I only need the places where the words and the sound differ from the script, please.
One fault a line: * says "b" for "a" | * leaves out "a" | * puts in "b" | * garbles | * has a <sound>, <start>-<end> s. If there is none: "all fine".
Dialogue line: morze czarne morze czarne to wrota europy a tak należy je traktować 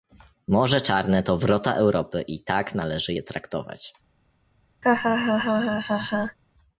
* leaves out "morze czarne"
* says "i" for "a"
* has a laugh, 4.8-6.4 s